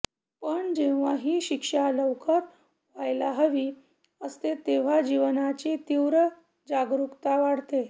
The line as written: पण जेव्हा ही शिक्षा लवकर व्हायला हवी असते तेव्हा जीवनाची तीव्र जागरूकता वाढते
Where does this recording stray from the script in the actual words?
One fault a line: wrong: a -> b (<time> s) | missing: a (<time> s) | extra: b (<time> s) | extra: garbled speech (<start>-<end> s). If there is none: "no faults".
no faults